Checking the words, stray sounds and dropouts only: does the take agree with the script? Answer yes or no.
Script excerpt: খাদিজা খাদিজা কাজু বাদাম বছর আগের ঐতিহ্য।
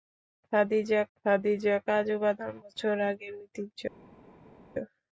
yes